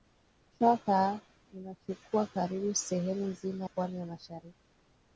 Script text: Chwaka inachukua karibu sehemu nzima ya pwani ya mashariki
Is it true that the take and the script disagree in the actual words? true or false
true